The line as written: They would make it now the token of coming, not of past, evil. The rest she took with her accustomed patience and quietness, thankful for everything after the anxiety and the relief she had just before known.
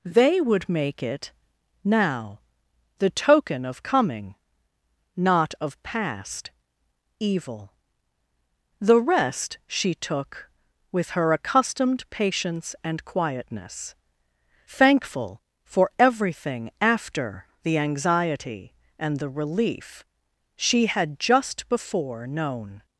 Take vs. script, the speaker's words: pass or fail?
pass